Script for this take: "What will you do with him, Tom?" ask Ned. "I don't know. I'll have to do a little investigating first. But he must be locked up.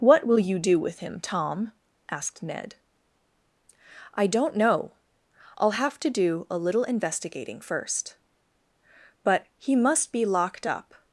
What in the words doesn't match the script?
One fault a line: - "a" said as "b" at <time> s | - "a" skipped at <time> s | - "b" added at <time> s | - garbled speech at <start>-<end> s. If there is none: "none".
- "ask" said as "asked" at 2.1 s